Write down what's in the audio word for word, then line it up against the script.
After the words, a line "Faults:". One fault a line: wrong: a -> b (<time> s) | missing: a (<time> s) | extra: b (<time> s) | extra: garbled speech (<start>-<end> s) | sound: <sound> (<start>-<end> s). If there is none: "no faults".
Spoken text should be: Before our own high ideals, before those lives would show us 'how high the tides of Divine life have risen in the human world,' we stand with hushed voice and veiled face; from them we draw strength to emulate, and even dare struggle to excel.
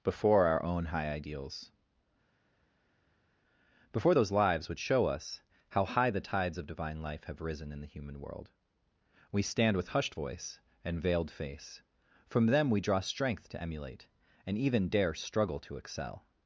Before our own high ideals, before those lives would show us 'how high the tides of Divine life have risen in the human world,' we stand with hushed voice and veiled face; from them we draw strength to emulate, and even dare struggle to excel.
Faults:
no faults